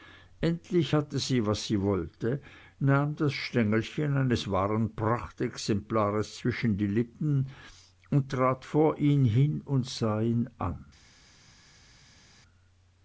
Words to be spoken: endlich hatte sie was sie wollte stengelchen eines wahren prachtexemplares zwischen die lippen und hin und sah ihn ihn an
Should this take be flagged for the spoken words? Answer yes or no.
yes